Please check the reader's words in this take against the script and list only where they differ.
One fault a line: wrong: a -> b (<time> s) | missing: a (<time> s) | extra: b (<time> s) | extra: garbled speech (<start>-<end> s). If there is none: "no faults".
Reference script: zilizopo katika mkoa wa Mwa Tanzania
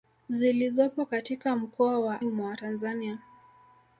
no faults